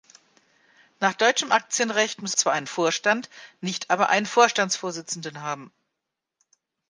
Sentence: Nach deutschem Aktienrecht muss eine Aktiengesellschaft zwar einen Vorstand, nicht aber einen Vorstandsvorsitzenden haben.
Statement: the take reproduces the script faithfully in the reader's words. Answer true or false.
false